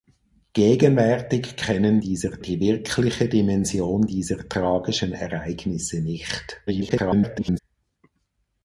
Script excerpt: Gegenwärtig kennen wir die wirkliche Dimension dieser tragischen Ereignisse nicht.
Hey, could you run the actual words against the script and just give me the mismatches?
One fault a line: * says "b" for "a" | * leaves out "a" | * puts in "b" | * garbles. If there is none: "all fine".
* says "dieser" for "wir"
* garbles